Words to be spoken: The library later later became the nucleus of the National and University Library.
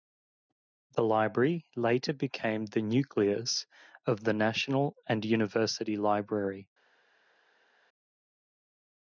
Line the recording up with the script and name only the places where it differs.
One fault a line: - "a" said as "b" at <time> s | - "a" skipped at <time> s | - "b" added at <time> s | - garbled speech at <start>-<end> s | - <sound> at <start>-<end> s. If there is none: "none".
- "later" skipped at 2.1 s